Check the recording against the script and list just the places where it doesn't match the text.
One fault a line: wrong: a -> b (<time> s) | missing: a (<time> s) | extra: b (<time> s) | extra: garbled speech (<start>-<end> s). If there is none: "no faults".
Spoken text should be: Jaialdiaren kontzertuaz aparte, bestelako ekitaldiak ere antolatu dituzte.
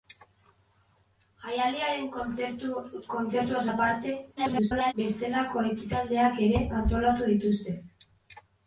extra: garbled speech (4.4-4.9 s)